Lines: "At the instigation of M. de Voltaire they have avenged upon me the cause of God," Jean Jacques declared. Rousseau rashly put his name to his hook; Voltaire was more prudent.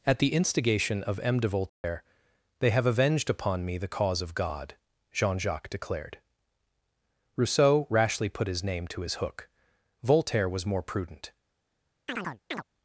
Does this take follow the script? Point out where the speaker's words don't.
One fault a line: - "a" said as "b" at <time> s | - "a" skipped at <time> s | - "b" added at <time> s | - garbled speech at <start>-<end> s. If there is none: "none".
none